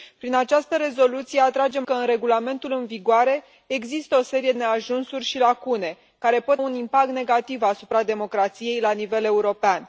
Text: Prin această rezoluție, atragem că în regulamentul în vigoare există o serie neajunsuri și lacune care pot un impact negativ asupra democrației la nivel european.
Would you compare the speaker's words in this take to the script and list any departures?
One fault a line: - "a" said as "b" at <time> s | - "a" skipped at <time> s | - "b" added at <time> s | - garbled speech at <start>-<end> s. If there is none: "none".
none